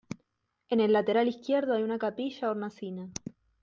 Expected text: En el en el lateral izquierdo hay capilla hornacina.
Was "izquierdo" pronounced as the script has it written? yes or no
yes